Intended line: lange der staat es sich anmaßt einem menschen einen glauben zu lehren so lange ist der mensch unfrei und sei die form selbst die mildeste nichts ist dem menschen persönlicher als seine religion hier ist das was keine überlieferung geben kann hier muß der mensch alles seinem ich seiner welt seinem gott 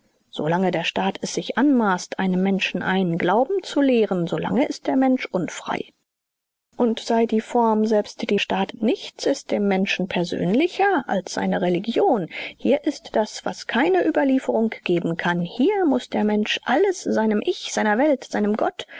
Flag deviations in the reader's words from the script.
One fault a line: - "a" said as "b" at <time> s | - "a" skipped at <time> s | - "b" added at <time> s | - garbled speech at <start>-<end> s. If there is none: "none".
- "mildeste" said as "staat" at 8.4 s